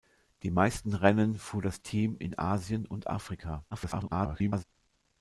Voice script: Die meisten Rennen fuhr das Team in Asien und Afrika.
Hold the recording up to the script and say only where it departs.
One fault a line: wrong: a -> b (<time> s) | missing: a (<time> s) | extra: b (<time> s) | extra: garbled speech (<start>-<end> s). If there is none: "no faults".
extra: garbled speech (3.7-4.6 s)